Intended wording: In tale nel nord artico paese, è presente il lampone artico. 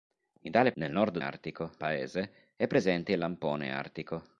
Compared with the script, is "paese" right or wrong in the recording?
right